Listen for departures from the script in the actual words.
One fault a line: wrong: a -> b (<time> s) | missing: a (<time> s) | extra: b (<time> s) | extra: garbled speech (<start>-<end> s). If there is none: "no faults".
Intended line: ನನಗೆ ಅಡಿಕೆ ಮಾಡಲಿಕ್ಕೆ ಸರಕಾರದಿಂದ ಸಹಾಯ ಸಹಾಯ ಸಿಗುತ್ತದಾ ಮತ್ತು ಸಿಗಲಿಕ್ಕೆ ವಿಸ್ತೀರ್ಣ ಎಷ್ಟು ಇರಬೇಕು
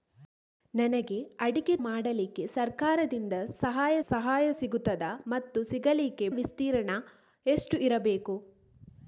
no faults